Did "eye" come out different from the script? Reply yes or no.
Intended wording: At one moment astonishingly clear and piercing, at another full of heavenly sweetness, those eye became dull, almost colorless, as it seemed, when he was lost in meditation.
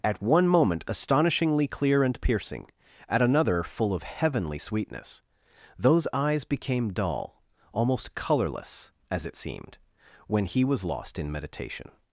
yes